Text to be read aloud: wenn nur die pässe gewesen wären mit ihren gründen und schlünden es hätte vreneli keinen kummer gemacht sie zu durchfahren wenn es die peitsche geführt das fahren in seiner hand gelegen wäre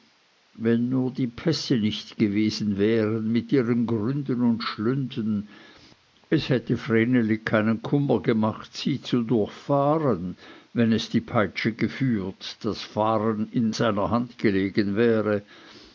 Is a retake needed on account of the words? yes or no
yes